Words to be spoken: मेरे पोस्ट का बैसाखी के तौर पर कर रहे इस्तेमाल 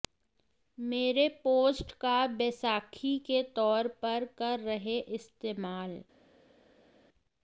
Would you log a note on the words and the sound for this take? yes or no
no